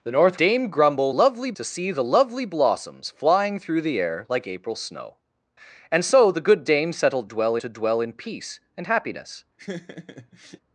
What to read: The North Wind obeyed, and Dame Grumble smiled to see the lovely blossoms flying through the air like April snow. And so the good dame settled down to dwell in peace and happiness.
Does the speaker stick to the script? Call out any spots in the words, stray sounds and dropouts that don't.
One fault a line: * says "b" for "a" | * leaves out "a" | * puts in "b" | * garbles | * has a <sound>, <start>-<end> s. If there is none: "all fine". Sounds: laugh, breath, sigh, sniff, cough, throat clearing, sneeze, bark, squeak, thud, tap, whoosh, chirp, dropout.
* leaves out "Wind obeyed and"
* says "lovely" for "smiled"
* says "dwell" for "down"
* has a laugh, 9.6-10.6 s